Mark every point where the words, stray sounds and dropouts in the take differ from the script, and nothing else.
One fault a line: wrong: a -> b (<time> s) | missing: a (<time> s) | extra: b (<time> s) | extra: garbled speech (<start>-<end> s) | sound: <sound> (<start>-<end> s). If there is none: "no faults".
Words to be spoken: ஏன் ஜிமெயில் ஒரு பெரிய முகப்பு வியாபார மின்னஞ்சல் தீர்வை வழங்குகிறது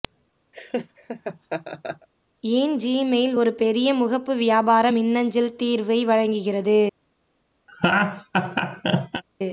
sound: laugh (0.5-2.1 s)
sound: laugh (7.7-9.2 s)